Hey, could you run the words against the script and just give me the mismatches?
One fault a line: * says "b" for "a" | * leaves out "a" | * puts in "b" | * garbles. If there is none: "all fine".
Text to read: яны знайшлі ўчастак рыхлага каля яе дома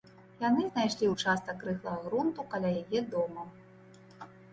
* puts in "грунту"